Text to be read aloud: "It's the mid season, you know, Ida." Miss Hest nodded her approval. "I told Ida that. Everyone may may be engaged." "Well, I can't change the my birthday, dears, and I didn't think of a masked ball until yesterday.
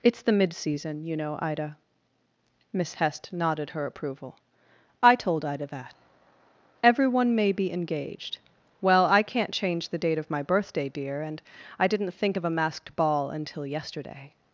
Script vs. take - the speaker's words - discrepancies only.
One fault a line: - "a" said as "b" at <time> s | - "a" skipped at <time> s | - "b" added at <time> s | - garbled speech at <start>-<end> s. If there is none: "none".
- "may" skipped at 7.5 s
- "date of" added at 10.0 s
- "dears" said as "dear" at 10.9 s